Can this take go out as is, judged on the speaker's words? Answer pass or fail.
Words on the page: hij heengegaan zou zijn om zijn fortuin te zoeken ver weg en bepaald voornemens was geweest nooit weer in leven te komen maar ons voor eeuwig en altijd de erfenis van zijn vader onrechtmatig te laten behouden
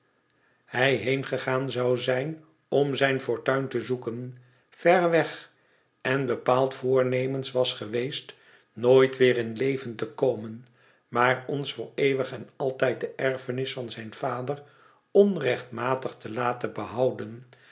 pass